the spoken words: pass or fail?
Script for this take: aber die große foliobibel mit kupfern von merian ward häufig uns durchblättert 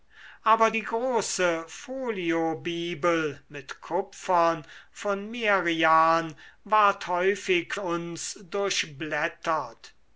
pass